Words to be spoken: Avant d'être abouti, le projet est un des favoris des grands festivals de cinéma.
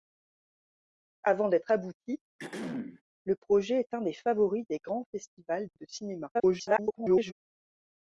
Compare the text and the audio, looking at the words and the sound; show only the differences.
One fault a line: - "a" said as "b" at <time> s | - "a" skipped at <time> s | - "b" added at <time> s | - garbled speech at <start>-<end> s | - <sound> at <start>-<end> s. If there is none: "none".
- throat clearing at 2.4-3.0 s
- garbled speech at 6.3-7.3 s